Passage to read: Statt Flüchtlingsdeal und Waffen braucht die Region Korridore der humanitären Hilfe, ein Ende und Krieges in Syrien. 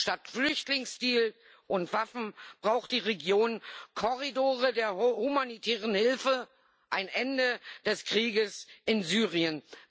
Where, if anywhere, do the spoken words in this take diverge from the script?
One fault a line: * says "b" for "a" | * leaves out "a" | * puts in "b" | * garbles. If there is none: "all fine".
* says "des" for "und"